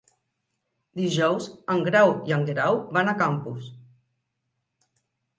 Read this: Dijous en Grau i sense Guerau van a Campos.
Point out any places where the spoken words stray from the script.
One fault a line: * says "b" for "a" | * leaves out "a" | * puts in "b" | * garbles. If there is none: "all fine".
* says "en" for "sense"